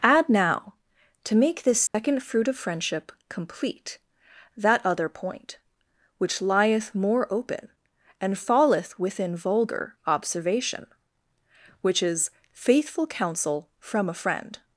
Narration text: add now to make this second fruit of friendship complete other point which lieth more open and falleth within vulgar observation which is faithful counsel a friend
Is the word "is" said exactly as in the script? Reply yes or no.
yes